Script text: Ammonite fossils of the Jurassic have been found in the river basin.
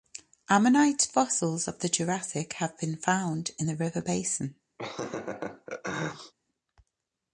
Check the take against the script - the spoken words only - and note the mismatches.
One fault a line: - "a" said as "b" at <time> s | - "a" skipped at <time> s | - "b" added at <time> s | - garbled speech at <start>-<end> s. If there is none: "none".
none